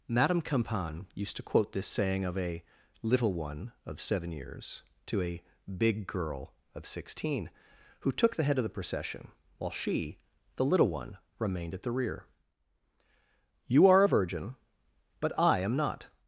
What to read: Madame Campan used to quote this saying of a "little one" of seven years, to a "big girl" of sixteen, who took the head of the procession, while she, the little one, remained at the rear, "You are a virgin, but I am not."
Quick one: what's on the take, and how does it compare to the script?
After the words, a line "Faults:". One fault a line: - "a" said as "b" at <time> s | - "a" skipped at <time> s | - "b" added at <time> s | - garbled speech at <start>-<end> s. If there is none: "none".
Madame Campan used to quote this saying of a "little one" of seven years, to a "big girl" of sixteen, who took the head of the procession, while she, the little one, remained at the rear, "You are a virgin, but I am not."
Faults:
none